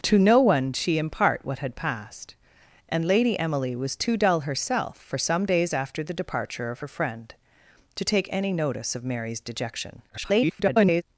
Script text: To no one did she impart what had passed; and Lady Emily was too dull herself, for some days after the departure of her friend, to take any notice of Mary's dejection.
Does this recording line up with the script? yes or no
no